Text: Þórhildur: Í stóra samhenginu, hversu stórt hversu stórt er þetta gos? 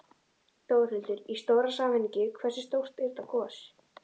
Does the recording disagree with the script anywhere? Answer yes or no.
yes